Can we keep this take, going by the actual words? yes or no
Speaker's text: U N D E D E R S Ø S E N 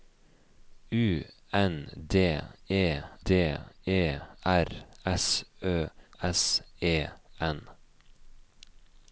yes